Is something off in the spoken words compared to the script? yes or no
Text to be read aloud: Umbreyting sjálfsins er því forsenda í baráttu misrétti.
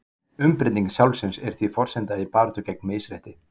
yes